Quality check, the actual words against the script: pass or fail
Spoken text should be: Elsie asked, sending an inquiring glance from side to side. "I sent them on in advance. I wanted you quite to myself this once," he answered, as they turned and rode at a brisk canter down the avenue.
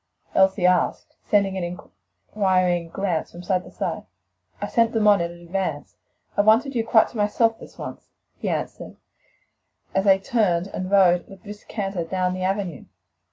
pass